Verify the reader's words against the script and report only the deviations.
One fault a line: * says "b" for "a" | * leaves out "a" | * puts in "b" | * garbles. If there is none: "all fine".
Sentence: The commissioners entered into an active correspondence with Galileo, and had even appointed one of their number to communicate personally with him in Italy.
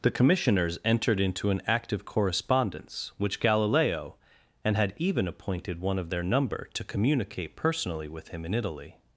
* says "which" for "with"